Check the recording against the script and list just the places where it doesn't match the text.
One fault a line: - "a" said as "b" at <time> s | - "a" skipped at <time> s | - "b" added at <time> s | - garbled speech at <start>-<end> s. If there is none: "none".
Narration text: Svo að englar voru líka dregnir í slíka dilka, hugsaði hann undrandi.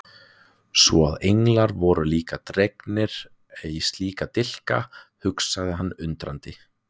none